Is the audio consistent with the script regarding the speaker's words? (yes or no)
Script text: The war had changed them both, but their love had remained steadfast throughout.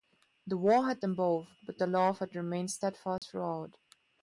no